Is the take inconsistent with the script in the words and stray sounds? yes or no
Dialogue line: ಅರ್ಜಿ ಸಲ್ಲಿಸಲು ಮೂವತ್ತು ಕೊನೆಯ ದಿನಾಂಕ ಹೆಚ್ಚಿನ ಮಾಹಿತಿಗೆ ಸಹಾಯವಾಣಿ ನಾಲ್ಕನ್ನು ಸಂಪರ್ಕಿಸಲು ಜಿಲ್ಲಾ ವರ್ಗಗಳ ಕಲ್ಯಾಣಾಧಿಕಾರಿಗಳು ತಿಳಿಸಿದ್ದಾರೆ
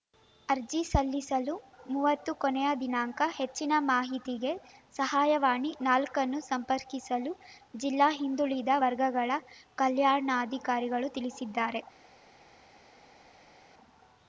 yes